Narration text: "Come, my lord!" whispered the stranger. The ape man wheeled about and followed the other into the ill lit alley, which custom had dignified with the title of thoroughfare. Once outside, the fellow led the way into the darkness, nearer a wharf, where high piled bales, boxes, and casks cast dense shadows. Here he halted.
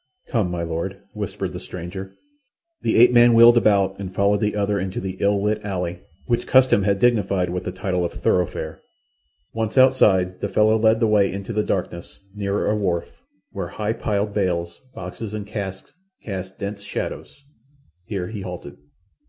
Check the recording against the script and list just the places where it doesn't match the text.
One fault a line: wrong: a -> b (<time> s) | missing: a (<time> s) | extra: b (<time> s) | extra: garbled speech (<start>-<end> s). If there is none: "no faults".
no faults